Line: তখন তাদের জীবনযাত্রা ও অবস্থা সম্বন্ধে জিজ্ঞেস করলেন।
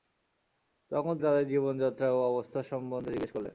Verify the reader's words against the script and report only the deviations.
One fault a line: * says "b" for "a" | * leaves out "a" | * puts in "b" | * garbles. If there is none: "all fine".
all fine